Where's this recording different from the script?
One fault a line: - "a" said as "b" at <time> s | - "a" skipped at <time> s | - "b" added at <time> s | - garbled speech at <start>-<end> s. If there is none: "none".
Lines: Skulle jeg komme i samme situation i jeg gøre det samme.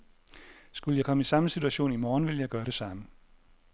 - "morgen ville" added at 2.0 s